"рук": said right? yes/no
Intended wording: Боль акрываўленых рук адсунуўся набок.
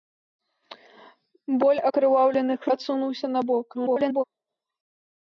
no